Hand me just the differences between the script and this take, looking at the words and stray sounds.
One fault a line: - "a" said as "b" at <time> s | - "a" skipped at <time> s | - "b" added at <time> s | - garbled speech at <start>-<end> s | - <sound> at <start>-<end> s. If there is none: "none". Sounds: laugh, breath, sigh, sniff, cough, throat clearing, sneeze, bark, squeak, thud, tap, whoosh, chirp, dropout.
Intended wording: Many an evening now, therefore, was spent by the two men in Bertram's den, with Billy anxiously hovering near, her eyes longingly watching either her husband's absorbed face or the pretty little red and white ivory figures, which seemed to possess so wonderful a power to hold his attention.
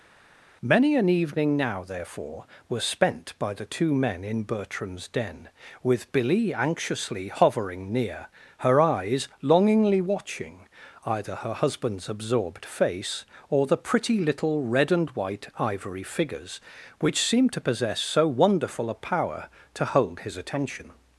none